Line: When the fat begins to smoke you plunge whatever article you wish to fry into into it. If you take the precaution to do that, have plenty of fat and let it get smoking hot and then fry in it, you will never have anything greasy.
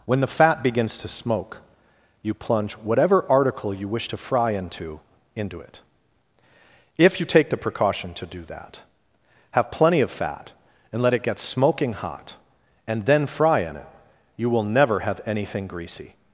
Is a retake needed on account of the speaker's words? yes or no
no